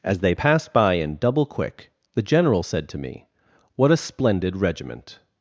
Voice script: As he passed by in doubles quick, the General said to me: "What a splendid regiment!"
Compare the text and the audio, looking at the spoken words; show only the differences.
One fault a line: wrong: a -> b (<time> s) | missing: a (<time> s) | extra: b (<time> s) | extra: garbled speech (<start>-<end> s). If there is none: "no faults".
wrong: he -> they (0.2 s)
wrong: doubles -> double (1.2 s)